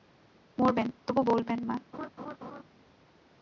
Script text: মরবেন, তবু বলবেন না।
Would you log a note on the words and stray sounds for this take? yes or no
yes